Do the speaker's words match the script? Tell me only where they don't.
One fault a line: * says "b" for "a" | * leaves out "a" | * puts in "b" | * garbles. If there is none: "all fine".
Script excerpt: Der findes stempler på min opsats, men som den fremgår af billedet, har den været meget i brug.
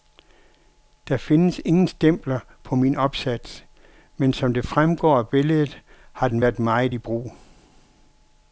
* puts in "ingen"
* says "det" for "den"